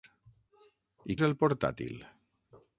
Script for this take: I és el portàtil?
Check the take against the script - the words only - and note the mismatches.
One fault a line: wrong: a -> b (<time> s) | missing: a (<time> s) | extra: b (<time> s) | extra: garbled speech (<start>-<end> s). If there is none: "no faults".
no faults